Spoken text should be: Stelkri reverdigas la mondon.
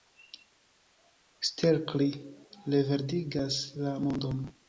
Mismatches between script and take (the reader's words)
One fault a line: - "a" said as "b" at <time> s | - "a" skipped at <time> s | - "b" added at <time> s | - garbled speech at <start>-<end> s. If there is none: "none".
none